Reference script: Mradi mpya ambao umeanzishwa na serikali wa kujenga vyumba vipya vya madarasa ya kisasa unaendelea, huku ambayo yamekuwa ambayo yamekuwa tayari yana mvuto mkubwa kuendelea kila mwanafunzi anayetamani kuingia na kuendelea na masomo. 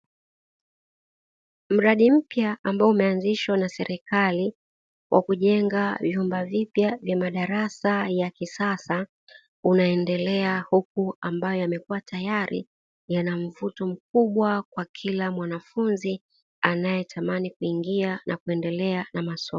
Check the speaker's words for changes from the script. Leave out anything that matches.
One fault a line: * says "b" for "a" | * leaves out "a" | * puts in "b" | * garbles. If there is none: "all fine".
* leaves out "ambayo yamekuwa"
* says "kwa" for "kuendelea"